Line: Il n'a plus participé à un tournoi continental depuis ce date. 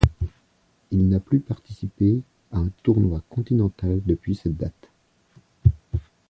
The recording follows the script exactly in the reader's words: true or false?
false